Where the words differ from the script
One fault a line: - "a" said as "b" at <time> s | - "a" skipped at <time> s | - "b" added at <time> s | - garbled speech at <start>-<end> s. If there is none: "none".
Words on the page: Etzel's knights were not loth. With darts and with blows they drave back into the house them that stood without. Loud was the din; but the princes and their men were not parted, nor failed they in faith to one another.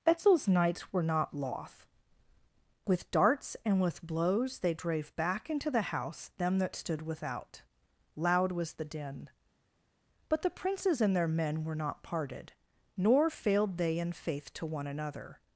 none